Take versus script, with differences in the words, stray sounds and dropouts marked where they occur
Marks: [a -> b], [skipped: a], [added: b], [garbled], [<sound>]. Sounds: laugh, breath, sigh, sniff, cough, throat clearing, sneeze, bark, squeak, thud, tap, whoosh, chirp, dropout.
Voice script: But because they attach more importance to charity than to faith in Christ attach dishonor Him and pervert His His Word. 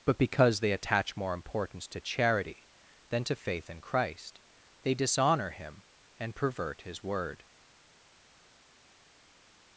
But because they attach more importance to charity than to faith in Christ [attach -> they] dishonor Him and pervert His [skipped: His] Word.